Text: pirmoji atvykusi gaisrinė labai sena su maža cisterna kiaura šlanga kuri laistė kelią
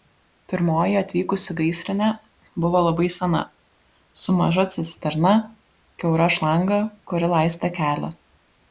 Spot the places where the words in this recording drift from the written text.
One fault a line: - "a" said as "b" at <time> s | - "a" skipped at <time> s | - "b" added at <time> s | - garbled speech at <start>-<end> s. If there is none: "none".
- "buvo" added at 2.7 s